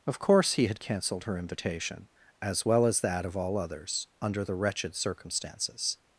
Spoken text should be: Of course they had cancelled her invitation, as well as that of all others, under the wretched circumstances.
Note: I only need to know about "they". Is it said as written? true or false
false